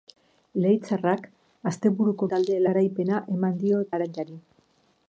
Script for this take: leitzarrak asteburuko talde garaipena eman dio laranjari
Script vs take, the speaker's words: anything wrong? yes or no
no